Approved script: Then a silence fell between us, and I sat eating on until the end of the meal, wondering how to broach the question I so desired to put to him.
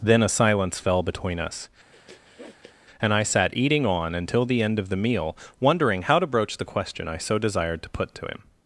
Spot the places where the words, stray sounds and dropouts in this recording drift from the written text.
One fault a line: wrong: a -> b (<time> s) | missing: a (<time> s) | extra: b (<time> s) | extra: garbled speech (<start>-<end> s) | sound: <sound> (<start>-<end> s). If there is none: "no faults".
sound: sniff (1.9-2.8 s)